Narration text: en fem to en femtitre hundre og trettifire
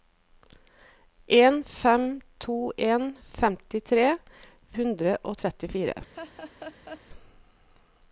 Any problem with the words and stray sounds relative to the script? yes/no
yes